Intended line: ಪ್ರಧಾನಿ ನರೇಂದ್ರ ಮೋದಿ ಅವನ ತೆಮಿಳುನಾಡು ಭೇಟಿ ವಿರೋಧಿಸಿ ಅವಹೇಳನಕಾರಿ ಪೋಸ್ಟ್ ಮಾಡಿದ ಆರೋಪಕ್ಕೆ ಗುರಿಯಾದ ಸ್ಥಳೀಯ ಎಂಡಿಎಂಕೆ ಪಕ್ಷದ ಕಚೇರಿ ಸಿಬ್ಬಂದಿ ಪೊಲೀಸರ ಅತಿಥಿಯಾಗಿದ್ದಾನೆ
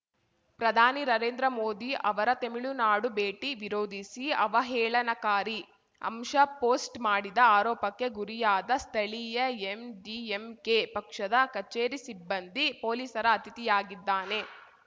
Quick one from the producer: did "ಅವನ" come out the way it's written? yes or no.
no